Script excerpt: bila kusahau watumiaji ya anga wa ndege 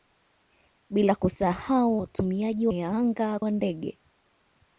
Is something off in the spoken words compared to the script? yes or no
no